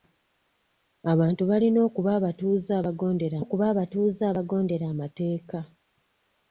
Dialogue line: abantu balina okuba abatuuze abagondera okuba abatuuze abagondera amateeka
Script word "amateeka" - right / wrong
right